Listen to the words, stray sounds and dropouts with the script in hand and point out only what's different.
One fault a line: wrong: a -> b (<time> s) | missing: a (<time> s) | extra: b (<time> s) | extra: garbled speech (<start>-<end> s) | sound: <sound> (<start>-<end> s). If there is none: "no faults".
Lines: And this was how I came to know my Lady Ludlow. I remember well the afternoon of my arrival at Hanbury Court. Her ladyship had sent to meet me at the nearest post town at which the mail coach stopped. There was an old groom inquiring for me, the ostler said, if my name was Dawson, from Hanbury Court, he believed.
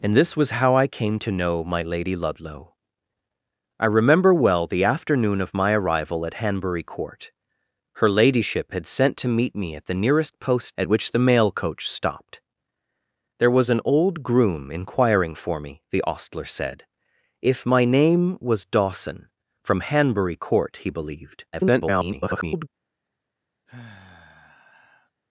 missing: town (10.7 s)
extra: garbled speech (21.5-22.7 s)
sound: sigh (23.7-25.1 s)